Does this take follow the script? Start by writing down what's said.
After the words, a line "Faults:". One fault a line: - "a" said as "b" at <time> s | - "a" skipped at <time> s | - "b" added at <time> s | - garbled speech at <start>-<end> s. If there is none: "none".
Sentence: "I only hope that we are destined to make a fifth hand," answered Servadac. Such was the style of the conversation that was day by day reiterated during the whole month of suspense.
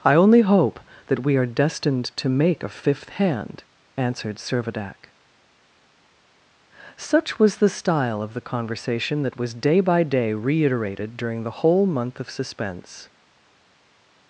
"I only hope that we are destined to make a fifth hand," answered Servadac. Such was the style of the conversation that was day by day reiterated during the whole month of suspense.
Faults:
none